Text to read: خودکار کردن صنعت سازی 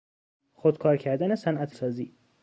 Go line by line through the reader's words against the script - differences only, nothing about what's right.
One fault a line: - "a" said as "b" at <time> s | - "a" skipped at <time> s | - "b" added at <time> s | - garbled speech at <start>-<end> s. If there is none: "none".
none